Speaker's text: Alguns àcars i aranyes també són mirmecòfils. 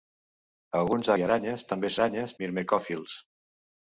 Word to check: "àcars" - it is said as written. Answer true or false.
false